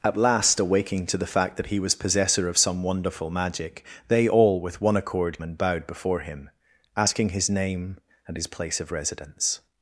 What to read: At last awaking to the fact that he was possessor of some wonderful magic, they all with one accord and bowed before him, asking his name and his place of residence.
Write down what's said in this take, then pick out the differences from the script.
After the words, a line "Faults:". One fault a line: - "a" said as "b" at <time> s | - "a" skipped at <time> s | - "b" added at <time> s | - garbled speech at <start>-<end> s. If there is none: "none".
At last awaking to the fact that he was possessor of some wonderful magic, they all with one accord and bowed before him, asking his name and his place of residence.
Faults:
none